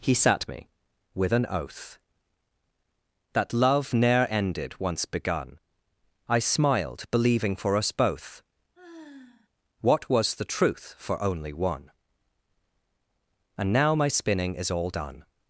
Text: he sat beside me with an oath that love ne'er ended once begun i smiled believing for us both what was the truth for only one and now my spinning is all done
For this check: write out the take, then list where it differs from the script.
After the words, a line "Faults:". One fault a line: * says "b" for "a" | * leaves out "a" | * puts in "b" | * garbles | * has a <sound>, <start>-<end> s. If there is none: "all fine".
he sat me with an oath that love ne'er ended once begun i smiled believing for us both what was the truth for only one and now my spinning is all done
Faults:
* leaves out "beside"
* has a sigh, 8.7-9.5 s